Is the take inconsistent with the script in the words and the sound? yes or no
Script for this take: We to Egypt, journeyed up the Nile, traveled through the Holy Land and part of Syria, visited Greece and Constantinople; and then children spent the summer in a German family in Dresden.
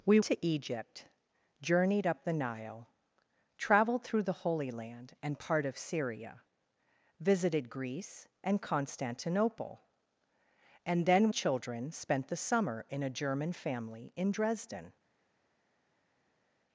no